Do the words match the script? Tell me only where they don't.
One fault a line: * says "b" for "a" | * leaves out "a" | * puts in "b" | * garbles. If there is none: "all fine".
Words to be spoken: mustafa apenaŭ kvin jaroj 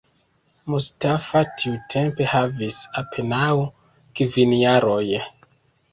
* puts in "tiutempe havis"